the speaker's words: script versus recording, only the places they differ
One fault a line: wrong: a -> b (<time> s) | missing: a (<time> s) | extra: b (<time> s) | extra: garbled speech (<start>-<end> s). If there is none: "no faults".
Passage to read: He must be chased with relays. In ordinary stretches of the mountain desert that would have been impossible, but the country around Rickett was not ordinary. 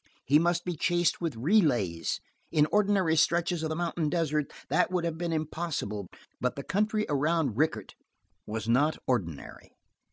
no faults